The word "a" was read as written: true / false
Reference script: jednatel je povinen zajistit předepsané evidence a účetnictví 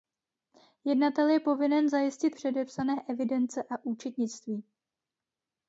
true